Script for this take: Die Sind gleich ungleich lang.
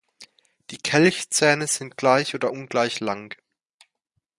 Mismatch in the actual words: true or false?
true